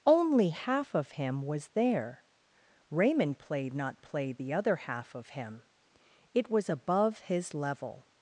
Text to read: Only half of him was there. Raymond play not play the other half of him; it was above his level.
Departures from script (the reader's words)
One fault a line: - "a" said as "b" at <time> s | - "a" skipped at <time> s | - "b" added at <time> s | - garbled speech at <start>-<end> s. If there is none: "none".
none